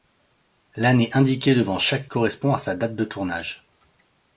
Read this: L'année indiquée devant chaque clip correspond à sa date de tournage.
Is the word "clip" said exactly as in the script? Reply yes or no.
no